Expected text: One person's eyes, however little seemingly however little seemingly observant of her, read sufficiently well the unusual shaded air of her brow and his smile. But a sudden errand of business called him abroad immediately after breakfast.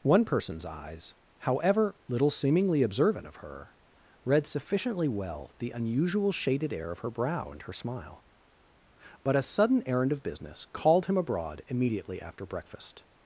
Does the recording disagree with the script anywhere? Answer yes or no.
yes